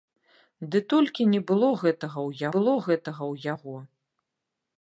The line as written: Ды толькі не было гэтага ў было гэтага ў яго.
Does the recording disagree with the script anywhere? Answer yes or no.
no